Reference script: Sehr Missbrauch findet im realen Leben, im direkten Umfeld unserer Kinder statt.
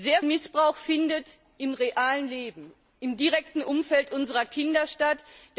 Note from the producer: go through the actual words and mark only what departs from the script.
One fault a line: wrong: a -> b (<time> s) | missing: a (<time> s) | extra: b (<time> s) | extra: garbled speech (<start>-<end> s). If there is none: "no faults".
no faults